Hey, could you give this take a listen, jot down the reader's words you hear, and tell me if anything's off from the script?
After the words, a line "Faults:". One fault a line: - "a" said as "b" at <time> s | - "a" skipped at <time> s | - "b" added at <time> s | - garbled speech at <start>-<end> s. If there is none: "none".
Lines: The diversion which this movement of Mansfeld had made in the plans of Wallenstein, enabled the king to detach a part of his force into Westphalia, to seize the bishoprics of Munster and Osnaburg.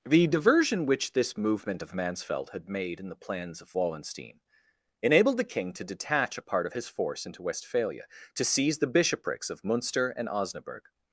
The diversion which this movement of Mansfeld had made in the plans of Wallenstein, enabled the king to detach a part of his force into Westphalia, to seize the bishoprics of Munster and Osnaburg.
Faults:
none